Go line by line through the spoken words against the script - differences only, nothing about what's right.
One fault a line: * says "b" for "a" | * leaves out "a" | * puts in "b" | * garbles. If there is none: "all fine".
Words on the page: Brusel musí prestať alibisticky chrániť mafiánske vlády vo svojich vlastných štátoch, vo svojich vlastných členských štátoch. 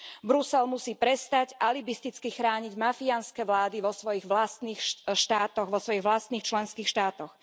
all fine